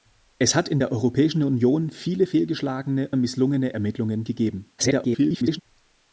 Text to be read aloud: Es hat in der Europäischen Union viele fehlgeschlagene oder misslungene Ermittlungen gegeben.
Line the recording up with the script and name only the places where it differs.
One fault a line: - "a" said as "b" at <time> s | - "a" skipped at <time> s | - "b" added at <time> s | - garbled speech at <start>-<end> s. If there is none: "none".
- "oder" skipped at 3.1 s
- garbled speech at 4.8-5.6 s